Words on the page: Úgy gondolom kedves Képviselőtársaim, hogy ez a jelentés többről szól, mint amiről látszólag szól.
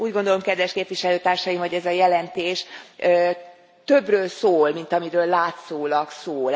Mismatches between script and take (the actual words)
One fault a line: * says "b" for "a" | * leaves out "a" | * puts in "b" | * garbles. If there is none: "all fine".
all fine